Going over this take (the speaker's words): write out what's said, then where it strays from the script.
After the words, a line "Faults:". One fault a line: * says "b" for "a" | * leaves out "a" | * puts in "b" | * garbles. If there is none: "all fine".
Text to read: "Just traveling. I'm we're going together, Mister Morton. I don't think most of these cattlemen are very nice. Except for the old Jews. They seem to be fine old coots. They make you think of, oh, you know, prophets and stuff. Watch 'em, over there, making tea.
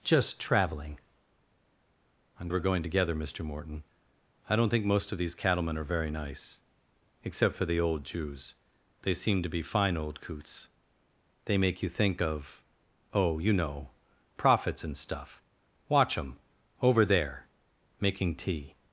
"Just traveling. I'm we're going together, Mister Morton. I don't think most of these cattlemen are very nice. Except for the old Jews. They seem to be fine old coots. They make you think of, oh, you know, prophets and stuff. Watch 'em, over there, making tea.
Faults:
all fine